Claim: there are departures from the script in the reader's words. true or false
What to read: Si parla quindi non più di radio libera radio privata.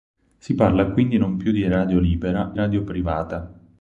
false